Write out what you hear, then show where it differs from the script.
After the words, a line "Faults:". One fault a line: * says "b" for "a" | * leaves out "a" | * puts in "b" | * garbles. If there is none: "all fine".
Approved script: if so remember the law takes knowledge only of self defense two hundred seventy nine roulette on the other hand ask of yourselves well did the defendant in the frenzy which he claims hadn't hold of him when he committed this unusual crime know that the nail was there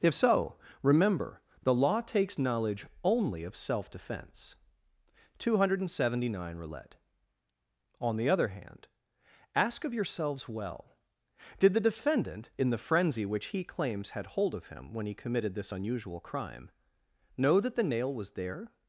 if so remember the law takes knowledge only of self defense two hundred seventy nine roulette on the other hand ask of yourselves well did the defendant in the frenzy which he claims had hold of him when he committed this unusual crime know that the nail was there
Faults:
* says "had" for "hadn't"